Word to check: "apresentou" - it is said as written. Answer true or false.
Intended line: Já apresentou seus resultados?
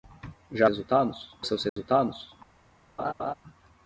false